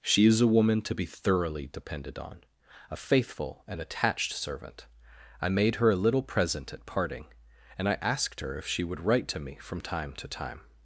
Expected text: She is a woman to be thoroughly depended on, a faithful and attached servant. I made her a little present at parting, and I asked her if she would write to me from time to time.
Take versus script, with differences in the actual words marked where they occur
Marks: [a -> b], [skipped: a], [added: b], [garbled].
She is a woman to be thoroughly depended on, a faithful and attached servant. I made her a little present at parting, and I asked her if she would write to me from time to time.